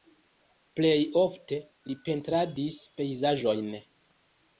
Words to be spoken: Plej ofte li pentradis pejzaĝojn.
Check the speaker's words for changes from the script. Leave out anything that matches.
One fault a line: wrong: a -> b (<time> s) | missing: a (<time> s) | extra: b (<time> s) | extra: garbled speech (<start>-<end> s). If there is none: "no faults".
no faults